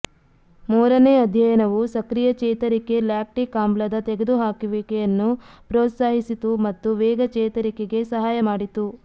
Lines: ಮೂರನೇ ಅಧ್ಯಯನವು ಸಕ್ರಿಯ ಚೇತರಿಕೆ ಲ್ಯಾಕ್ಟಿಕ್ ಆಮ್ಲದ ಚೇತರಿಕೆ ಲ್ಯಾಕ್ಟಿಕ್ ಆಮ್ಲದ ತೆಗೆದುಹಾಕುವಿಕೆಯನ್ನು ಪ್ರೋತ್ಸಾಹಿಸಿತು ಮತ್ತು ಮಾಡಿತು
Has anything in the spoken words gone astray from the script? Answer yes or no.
yes